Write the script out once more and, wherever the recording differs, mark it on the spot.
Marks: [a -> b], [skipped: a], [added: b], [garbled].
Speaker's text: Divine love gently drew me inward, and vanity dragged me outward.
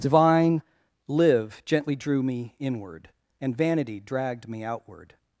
Divine [love -> live] gently drew me inward, and vanity dragged me outward.